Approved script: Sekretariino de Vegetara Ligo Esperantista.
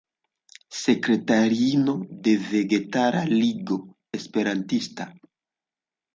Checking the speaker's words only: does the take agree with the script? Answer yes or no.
yes